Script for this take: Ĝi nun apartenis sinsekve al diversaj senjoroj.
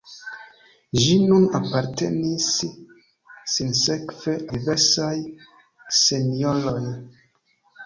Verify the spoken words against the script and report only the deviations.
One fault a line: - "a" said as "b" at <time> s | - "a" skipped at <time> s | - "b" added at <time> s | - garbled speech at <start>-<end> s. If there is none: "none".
- "al" skipped at 4.3 s